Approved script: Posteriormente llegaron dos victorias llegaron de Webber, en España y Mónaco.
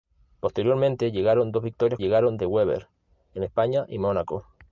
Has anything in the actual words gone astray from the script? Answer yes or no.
no